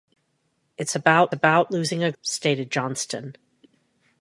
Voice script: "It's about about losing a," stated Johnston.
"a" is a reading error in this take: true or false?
false